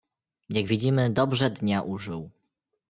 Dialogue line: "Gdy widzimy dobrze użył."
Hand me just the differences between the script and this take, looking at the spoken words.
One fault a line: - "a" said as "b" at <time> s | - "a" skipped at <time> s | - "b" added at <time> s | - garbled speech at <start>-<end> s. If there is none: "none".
- "Gdy" said as "Jak" at 0.5 s
- "dnia" added at 1.5 s